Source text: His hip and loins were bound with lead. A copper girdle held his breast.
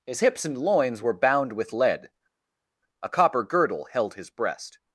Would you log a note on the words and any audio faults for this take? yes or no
yes